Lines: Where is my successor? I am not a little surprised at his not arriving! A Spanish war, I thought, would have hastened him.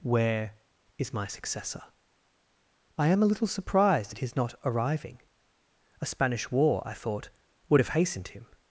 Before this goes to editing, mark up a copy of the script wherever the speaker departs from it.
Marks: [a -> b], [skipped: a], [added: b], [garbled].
Where is my successor? I am [skipped: not] a little surprised at his not arriving! A Spanish war, I thought, would have hastened him.